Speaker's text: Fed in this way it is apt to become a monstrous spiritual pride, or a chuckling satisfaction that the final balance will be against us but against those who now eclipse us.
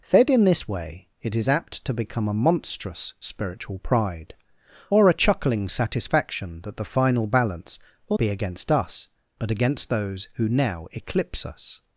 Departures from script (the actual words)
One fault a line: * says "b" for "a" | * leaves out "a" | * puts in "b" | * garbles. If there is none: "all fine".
all fine